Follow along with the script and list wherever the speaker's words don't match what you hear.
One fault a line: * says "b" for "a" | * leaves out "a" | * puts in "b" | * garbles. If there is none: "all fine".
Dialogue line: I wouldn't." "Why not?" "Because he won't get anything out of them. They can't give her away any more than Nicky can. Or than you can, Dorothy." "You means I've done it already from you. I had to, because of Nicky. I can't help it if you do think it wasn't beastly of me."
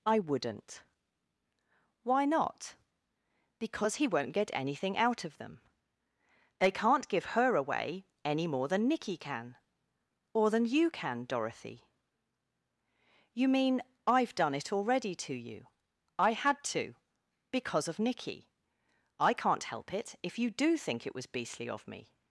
* says "mean" for "means"
* says "to" for "from"
* says "was" for "wasn't"